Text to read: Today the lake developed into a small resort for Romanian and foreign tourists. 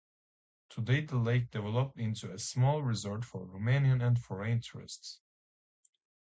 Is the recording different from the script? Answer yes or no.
no